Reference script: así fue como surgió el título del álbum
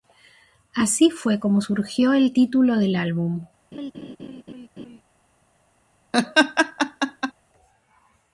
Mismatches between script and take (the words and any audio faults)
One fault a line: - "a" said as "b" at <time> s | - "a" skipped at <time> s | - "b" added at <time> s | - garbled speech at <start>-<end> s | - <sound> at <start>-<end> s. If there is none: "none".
- laugh at 3.7-5.0 s
- laugh at 6.1-7.3 s